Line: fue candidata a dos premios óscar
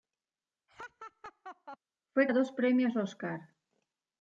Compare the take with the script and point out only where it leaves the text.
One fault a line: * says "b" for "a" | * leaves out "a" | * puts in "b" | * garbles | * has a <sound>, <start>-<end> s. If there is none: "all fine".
* has a laugh, 0.7-1.8 s
* leaves out "candidata"